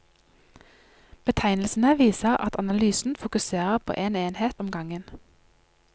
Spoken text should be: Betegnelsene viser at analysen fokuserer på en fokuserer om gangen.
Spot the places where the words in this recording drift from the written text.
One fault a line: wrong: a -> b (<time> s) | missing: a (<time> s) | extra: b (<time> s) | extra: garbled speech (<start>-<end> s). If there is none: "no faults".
wrong: fokuserer -> enhet (4.2 s)